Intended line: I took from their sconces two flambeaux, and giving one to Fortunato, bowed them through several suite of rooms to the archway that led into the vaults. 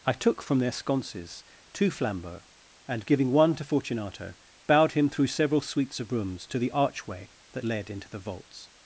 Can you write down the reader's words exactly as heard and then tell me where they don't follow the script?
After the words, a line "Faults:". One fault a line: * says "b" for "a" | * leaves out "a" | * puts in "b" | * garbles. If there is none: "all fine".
I took from their sconces two flambeaux, and giving one to Fortunato, bowed him through several suites of rooms to the archway that led into the vaults.
Faults:
* says "him" for "them"
* says "suites" for "suite"